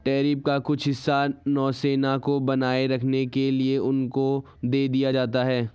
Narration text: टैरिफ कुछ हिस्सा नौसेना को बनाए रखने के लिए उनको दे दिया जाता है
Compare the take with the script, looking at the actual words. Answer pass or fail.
fail